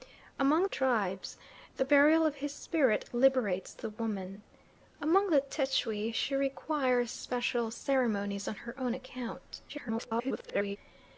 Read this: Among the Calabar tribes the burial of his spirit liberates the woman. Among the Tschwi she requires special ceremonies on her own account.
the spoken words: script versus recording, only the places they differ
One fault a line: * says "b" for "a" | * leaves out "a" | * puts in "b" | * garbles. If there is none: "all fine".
* leaves out "the Calabar"
* garbles